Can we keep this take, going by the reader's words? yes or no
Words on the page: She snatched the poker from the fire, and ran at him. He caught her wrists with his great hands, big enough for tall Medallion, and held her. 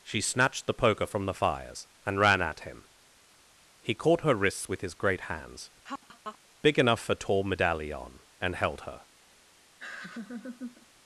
no